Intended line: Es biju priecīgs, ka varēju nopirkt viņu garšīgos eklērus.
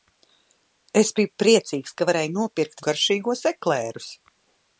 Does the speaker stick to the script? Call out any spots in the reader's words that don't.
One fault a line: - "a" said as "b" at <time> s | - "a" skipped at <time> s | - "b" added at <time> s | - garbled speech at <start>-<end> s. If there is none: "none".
- "viņu" skipped at 2.9 s